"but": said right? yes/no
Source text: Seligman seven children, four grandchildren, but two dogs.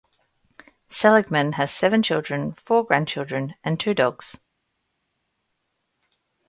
no